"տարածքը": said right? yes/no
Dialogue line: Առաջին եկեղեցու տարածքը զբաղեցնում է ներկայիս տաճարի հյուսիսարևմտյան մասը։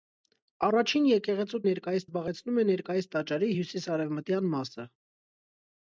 no